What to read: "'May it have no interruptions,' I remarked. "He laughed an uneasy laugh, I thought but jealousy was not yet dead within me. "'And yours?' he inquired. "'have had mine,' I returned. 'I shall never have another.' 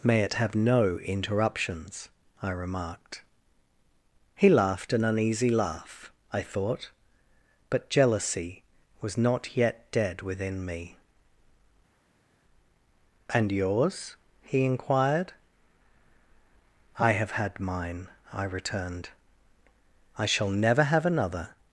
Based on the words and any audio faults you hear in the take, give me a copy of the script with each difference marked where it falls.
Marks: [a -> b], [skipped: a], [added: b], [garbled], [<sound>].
"'May it have no interruptions,' I remarked. "He laughed an uneasy laugh, I thought but jealousy was not yet dead within me. "'And yours?' he inquired. [added: I] "'have had mine,' I returned. 'I shall never have another.'